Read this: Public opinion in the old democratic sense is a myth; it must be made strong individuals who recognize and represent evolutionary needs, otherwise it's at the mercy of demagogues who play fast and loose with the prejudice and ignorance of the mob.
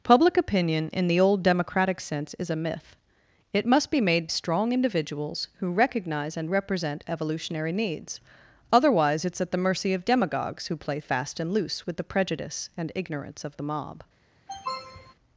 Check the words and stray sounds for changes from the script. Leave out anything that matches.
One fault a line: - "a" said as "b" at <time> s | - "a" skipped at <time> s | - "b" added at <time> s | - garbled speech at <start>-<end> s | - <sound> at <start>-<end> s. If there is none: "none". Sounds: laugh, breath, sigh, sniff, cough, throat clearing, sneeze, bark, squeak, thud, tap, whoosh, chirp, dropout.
- sniff at 14.5-15.1 s